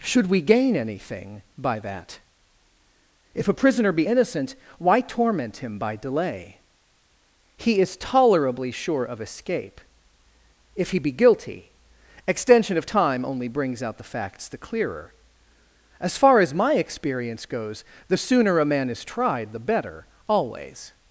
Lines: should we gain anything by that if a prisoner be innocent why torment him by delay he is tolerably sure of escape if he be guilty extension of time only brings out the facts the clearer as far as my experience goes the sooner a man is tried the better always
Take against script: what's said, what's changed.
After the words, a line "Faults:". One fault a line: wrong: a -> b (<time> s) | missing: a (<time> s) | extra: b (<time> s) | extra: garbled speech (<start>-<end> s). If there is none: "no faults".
should we gain anything by that if a prisoner be innocent why torment him by delay he is tolerably sure of escape if he be guilty extension of time only brings out the facts the clearer as far as my experience goes the sooner a man is tried the better always
Faults:
no faults